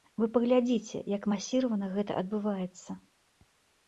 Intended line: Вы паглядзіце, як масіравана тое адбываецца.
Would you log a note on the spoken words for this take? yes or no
yes